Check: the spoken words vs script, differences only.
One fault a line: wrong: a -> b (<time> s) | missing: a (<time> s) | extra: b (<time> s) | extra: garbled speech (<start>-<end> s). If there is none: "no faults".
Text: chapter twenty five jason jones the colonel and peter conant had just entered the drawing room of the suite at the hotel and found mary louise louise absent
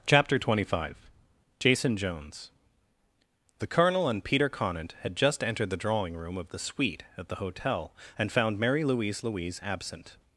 no faults